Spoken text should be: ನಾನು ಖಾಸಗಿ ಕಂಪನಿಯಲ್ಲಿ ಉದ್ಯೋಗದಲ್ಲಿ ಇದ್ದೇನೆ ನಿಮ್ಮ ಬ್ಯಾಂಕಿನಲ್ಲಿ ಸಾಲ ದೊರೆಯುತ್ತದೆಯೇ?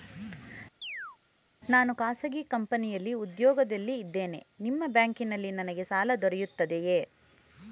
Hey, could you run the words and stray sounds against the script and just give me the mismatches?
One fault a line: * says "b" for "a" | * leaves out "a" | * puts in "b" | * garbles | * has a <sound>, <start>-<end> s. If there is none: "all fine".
* has a chirp, 0.8-1.2 s
* puts in "ನನಗೆ"